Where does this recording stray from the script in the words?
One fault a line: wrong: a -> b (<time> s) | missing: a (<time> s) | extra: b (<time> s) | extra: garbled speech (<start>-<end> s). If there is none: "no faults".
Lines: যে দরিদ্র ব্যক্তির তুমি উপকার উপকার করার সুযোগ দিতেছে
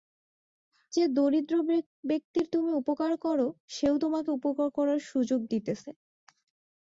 extra: কর সেও তোমাকে (3.2 s)